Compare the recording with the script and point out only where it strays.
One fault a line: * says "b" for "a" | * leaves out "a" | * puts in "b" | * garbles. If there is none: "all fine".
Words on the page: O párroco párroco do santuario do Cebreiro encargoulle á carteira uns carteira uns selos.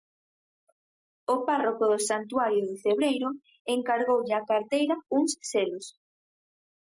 * leaves out "párroco"
* leaves out "carteira uns"